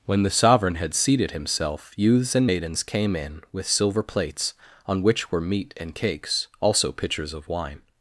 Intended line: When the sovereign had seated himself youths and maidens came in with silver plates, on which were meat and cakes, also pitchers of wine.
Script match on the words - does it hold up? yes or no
yes